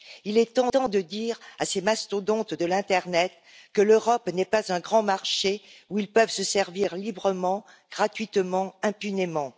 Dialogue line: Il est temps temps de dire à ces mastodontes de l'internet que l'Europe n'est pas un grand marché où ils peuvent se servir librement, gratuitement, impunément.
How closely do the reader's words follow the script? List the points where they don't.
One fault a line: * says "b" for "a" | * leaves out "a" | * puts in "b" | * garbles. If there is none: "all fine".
all fine